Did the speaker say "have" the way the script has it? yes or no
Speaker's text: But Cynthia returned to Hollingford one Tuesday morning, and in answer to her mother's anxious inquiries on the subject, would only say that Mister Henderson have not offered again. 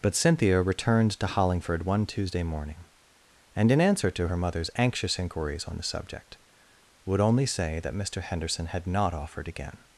no